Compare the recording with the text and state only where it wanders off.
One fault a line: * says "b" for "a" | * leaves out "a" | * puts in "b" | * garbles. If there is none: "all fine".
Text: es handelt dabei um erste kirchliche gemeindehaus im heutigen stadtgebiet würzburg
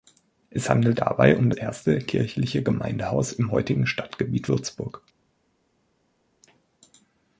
all fine